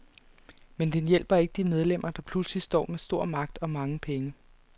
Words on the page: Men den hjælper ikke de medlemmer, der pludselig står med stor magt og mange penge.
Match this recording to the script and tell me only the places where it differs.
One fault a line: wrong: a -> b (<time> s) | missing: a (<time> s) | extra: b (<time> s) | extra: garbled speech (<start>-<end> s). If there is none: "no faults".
no faults